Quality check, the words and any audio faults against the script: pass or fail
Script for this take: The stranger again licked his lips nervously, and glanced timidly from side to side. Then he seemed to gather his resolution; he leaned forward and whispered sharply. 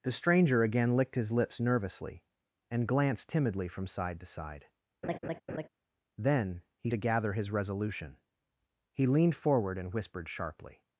fail